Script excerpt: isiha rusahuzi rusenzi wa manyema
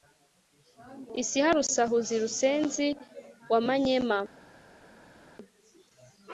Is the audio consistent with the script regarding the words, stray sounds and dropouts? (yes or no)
yes